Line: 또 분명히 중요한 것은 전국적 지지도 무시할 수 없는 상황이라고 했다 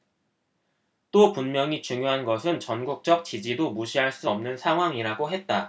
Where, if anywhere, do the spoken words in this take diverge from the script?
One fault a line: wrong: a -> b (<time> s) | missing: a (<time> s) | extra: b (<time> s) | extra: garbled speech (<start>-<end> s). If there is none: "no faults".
no faults